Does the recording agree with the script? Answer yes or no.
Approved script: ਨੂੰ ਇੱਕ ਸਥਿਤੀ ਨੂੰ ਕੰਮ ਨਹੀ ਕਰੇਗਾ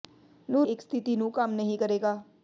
yes